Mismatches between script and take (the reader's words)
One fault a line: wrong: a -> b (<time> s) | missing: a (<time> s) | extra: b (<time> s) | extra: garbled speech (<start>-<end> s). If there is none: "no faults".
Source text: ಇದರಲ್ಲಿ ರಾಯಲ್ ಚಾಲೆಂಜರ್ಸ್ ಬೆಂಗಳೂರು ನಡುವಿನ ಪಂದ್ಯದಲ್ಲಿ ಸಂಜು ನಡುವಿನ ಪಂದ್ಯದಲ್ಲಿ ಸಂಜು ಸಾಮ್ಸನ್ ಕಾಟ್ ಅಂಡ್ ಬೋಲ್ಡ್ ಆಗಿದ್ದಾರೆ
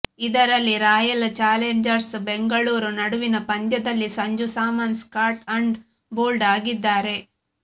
missing: ನಡುವಿನ ಪಂದ್ಯದಲ್ಲಿ ಸಂಜು (4.5 s)